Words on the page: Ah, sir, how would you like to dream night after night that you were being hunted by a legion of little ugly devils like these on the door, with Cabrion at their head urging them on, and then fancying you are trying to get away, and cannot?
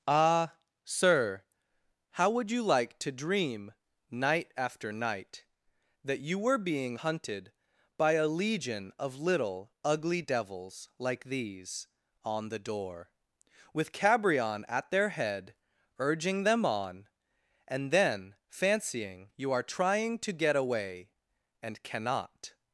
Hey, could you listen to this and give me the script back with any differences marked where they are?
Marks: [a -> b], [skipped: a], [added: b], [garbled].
Ah, sir, how would you like to dream night after night that you were being hunted by a legion of little ugly devils like these on the door, with Cabrion at their head urging them on, and then fancying you are trying to get away, and cannot?